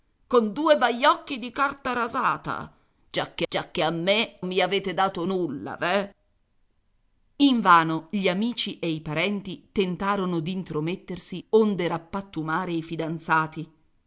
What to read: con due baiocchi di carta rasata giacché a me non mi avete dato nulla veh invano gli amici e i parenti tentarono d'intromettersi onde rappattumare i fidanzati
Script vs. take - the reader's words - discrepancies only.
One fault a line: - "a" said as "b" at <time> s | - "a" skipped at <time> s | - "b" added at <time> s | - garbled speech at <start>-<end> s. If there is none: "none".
- "giacché" added at 3.5 s
- "non" skipped at 4.4 s